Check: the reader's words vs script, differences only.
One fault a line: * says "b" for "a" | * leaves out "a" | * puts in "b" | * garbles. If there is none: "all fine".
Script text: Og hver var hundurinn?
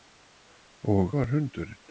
* leaves out "hver"